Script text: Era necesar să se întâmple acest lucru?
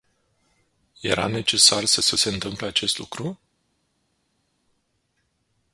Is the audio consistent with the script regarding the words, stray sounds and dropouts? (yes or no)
no